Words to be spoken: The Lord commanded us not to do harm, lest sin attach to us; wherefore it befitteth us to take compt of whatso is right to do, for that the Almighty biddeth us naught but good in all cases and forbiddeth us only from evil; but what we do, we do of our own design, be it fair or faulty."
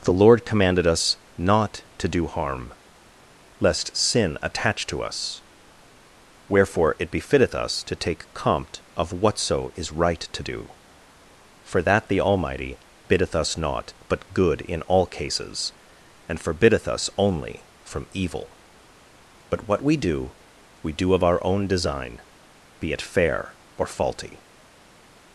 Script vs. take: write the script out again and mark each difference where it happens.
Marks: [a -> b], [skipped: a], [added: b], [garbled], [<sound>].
The Lord commanded us not to do harm, lest sin attach to us; wherefore it befitteth us to take compt of whatso is right to do, for that the Almighty biddeth us naught but good in all cases and forbiddeth us only from evil; but what we do, we do of our own design, be it fair or faulty."